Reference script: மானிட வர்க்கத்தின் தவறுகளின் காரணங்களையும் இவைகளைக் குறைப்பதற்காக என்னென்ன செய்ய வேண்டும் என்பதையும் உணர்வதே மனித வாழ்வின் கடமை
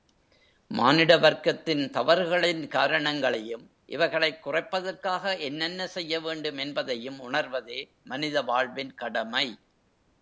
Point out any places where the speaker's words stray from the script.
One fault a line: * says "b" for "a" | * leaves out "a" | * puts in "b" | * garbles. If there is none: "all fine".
all fine